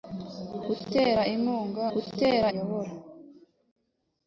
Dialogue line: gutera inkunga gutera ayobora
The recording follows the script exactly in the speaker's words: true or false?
true